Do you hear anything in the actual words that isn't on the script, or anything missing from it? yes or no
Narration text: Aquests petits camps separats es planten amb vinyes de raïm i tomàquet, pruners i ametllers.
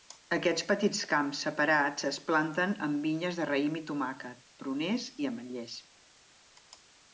no